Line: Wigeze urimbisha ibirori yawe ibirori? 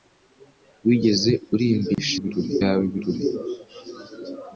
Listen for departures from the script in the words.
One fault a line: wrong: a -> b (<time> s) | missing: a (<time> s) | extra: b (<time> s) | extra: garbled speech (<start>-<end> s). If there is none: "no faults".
no faults